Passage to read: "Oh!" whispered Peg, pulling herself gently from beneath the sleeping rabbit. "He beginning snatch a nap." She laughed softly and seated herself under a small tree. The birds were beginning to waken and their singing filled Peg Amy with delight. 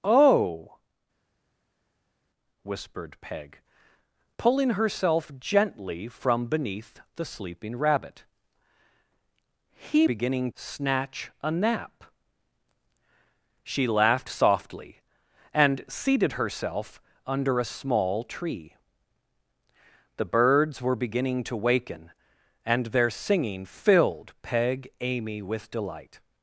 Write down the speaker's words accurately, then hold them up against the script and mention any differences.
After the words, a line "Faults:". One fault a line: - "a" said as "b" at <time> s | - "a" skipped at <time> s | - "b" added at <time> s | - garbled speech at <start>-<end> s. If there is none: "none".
"Oh!" whispered Peg, pulling herself gently from beneath the sleeping rabbit. "He beginning snatch a nap." She laughed softly and seated herself under a small tree. The birds were beginning to waken and their singing filled Peg Amy with delight.
Faults:
none